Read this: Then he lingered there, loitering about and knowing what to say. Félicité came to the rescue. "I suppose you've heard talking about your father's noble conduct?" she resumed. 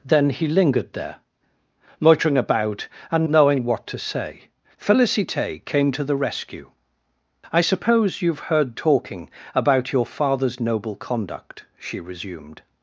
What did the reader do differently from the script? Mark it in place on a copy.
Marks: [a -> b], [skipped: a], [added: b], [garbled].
Then he lingered there, loitering about and knowing what to say. Félicité came to the rescue. "I suppose you've heard talking about your father's noble conduct?" she resumed.